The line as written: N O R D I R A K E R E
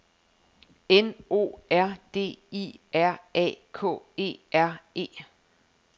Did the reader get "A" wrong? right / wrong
right